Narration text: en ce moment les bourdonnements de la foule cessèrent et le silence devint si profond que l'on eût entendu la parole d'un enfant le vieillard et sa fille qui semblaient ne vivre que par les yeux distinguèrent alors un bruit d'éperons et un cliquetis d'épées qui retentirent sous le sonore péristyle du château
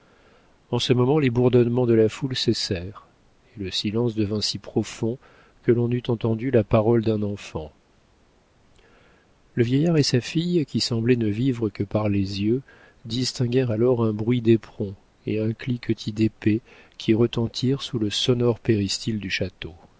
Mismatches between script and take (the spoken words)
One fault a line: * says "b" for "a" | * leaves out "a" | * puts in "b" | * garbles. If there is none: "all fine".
all fine